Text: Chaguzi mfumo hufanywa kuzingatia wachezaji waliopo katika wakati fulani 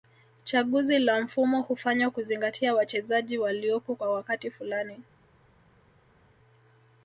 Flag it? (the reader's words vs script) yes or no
yes